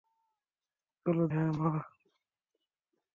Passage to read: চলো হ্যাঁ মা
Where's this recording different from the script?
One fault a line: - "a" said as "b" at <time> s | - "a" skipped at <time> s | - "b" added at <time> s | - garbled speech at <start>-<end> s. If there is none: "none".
none